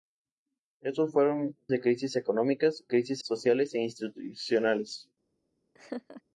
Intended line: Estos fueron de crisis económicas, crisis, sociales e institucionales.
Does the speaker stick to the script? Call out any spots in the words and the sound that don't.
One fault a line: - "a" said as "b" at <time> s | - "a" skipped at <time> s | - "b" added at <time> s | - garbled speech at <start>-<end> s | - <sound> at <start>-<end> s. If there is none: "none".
- laugh at 5.7-6.2 s